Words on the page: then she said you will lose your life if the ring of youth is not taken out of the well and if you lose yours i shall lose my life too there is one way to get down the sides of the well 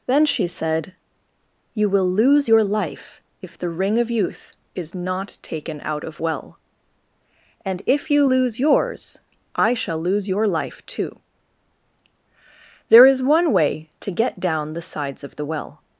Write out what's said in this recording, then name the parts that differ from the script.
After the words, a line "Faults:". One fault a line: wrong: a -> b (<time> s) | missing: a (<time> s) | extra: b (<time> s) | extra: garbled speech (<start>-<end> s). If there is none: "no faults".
then she said you will lose your life if the ring of youth is not taken out of well and if you lose yours i shall lose your life too there is one way to get down the sides of the well
Faults:
missing: the (6.2 s)
wrong: my -> your (10.3 s)